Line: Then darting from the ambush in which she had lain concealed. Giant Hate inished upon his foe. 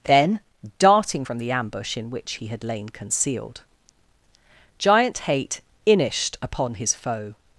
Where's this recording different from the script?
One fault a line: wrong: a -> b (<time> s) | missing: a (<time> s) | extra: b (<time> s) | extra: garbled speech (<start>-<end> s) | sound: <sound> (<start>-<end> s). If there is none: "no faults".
wrong: she -> he (2.3 s)